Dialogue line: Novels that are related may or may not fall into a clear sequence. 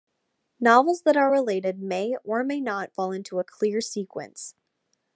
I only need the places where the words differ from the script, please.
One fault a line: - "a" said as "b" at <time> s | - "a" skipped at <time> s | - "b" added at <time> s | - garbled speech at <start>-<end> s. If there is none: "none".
none